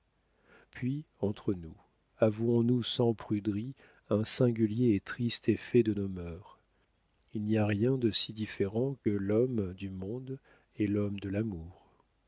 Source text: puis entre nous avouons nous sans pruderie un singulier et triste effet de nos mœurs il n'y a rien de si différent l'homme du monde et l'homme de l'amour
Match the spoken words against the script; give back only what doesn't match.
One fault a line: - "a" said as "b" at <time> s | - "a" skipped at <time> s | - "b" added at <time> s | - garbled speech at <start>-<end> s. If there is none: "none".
none